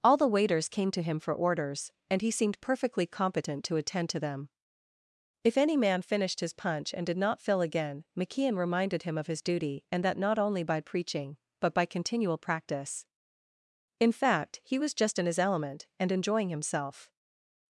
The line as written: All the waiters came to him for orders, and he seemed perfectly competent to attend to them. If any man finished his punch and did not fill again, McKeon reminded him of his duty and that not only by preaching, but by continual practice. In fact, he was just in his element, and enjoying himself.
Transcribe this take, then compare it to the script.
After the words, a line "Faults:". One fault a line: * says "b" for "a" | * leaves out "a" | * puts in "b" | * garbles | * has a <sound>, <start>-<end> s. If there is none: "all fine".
All the waiters came to him for orders, and he seemed perfectly competent to attend to them. If any man finished his punch and did not fill again, McKeon reminded him of his duty and that not only by preaching, but by continual practice. In fact, he was just in his element, and enjoying himself.
Faults:
all fine